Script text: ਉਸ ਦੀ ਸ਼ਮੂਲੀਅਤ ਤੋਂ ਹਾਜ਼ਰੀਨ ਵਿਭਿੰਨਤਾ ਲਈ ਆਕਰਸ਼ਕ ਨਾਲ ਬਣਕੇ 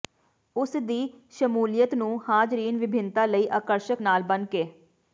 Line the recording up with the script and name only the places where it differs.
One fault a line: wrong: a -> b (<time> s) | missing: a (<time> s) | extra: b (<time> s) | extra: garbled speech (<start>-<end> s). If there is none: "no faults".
wrong: ਤੋਂ -> ਨੂੰ (1.9 s)